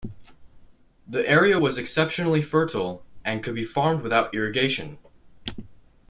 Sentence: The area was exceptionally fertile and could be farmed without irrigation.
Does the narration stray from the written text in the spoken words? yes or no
no